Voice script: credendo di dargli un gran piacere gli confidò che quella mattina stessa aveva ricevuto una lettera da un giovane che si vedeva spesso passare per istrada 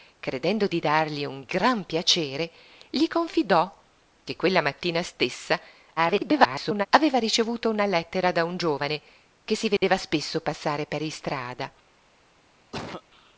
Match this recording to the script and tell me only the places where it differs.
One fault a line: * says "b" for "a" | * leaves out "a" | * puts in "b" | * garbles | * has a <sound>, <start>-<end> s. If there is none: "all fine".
* garbles
* has a dropout, 9.8-9.8 s
* has a cough, 12.7-13.0 s